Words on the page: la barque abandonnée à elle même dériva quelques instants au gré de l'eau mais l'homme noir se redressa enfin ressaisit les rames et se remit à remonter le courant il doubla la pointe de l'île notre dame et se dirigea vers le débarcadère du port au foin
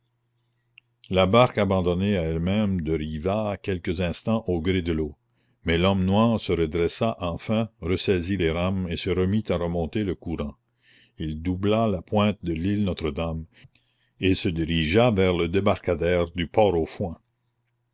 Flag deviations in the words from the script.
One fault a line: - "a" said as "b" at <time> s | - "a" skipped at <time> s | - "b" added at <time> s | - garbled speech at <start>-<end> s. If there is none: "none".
none